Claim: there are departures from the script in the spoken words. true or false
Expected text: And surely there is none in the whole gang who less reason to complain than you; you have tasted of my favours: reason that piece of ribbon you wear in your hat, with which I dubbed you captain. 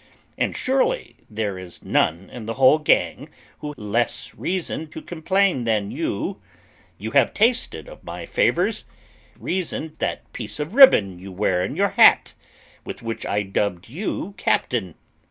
false